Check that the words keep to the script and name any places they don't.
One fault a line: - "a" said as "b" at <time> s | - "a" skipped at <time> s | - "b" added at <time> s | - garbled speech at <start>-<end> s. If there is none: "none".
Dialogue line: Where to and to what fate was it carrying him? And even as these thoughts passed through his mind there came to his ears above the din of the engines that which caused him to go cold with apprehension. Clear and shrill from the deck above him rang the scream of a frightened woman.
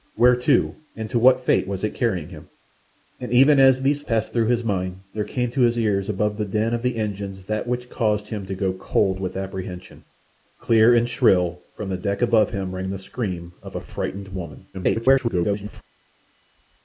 - "thoughts" skipped at 4.0 s
- garbled speech at 14.7-15.8 s